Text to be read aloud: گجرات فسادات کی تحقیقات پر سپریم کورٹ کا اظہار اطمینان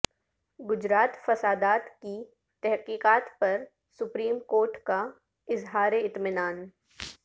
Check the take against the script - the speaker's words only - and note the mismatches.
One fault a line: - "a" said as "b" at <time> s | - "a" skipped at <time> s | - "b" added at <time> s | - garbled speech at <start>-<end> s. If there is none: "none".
none